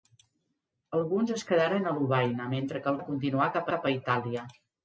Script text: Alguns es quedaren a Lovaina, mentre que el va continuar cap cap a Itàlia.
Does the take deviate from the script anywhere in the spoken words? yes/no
no